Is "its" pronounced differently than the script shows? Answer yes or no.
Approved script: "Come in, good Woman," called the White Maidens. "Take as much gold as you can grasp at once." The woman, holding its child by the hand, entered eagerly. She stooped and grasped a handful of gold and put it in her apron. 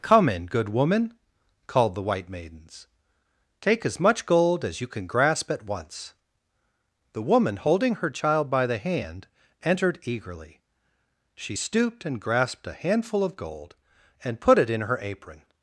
yes